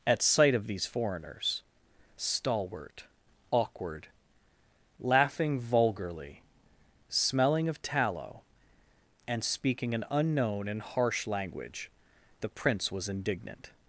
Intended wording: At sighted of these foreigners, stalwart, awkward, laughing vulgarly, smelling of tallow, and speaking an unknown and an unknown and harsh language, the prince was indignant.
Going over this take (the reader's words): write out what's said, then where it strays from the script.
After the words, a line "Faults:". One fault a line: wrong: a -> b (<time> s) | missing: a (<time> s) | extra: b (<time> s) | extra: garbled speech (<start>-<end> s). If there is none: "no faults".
At sight of these foreigners, stalwart, awkward, laughing vulgarly, smelling of tallow, and speaking an unknown and harsh language, the prince was indignant.
Faults:
wrong: sighted -> sight (0.2 s)
missing: an unknown and (10.8 s)